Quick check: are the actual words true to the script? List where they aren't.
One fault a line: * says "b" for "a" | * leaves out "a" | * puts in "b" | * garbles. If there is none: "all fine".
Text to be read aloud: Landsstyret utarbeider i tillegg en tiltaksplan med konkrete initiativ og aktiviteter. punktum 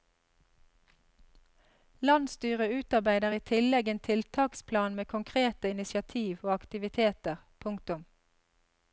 all fine